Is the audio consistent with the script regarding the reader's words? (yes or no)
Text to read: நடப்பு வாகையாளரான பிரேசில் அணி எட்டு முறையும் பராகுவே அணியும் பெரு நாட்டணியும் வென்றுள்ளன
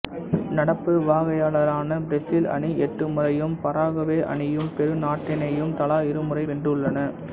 no